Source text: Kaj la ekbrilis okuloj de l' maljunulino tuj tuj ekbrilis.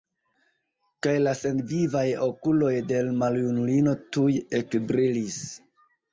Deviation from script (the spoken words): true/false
true